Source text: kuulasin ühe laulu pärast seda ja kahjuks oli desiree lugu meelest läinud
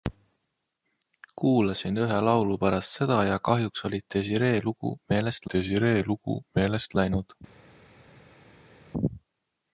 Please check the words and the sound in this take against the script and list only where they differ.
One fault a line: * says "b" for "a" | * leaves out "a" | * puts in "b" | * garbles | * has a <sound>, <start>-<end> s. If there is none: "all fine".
* puts in "desiree lugu meelest"